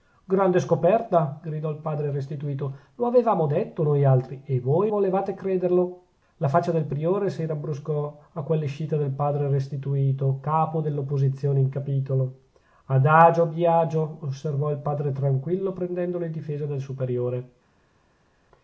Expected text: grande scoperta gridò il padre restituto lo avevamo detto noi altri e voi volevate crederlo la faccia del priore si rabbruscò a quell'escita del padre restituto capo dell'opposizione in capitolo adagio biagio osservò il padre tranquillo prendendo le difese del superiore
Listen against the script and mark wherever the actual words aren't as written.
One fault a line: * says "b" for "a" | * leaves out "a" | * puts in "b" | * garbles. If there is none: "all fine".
all fine